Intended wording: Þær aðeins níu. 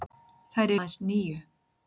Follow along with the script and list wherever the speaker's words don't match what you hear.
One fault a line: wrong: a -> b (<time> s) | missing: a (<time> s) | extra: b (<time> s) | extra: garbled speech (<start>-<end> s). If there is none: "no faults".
no faults